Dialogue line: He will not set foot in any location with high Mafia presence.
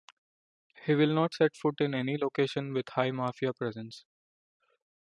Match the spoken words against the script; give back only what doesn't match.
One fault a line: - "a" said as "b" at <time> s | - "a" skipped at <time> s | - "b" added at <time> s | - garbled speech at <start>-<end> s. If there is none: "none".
none